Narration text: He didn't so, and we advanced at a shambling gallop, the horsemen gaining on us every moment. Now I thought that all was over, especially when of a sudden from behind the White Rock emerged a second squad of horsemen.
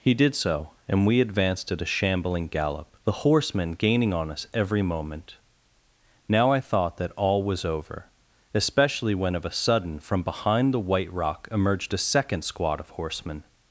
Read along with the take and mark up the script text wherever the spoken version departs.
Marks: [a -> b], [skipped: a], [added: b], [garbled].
He [didn't -> did] so, and we advanced at a shambling gallop, the horsemen gaining on us every moment. Now I thought that all was over, especially when of a sudden from behind the White Rock emerged a second squad of horsemen.